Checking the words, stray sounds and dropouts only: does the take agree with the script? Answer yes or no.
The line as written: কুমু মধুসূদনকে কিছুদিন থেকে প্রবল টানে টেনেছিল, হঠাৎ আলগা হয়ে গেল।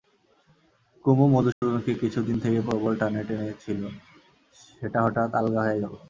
no